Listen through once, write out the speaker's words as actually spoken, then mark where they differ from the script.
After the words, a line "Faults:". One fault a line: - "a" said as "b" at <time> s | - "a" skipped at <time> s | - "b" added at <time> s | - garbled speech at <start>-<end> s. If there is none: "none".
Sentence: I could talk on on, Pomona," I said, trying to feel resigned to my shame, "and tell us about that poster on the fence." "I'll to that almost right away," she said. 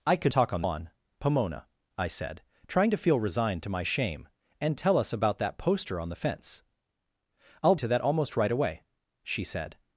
I could talk on on, Pomona," I said, trying to feel resigned to my shame, "and tell us about that poster on the fence." "I'll to that almost right away," she said.
Faults:
none